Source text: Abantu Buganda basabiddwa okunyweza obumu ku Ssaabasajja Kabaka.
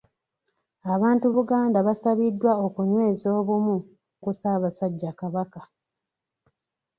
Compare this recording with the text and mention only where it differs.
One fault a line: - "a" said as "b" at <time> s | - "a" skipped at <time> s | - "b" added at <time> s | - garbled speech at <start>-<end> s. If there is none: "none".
none